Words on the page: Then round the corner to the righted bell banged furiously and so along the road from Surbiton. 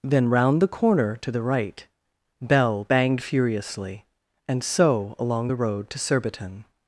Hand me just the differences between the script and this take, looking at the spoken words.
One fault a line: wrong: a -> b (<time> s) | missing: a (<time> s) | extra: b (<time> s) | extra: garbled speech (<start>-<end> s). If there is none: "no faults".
wrong: righted -> right (1.4 s)
wrong: from -> to (5.9 s)